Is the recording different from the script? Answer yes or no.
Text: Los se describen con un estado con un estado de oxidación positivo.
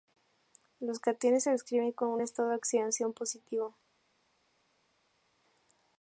yes